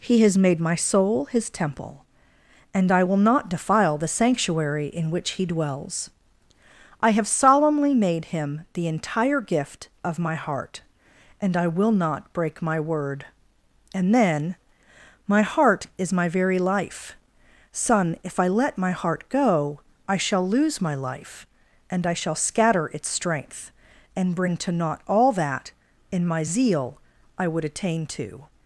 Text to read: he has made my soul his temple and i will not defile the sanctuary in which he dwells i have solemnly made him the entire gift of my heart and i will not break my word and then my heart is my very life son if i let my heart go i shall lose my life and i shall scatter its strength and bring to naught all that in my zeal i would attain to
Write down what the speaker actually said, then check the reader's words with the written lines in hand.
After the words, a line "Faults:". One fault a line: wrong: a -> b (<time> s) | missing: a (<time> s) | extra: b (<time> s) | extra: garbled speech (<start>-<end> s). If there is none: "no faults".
he has made my soul his temple and i will not defile the sanctuary in which he dwells i have solemnly made him the entire gift of my heart and i will not break my word and then my heart is my very life son if i let my heart go i shall lose my life and i shall scatter its strength and bring to naught all that in my zeal i would attain to
Faults:
no faults